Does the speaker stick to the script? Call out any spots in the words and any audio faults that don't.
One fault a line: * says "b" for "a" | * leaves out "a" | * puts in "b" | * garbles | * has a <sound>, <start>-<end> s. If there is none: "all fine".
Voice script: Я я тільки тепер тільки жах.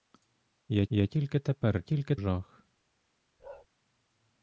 * has a bark, 3.4-3.7 s